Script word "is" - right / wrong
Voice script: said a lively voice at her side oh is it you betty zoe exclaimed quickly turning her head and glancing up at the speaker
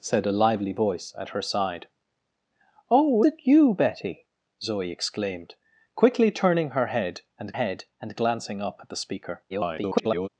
wrong